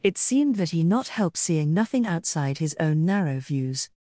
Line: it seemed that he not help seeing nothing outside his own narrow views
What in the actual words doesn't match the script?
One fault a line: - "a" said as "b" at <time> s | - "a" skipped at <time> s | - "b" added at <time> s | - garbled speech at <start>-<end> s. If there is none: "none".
none